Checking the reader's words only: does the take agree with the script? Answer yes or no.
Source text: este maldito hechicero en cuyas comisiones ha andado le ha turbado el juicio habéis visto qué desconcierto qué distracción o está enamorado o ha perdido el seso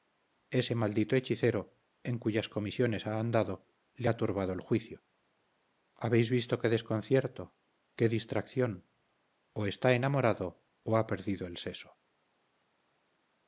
no